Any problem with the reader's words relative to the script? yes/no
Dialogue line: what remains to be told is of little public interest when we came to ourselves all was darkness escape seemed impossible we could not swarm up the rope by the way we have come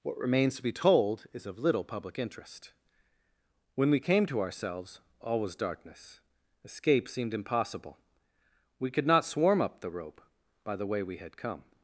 yes